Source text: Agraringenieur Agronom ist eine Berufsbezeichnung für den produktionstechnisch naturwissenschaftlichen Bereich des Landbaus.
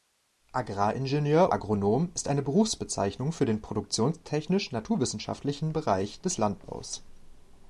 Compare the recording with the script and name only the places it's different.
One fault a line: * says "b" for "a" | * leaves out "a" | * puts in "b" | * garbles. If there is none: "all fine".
all fine